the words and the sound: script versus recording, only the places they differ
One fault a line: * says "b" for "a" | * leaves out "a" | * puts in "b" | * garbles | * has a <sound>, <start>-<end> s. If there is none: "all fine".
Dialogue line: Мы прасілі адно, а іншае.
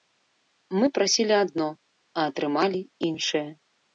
* puts in "атрымалі"